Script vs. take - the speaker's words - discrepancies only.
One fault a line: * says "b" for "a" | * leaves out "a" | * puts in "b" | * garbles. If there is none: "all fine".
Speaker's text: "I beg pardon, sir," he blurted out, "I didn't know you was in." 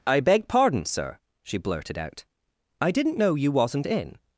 * says "she" for "he"
* says "wasn't" for "was"